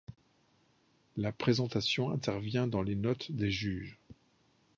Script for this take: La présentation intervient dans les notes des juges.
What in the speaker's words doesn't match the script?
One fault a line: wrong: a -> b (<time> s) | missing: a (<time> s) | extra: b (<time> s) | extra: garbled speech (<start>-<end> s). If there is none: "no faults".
no faults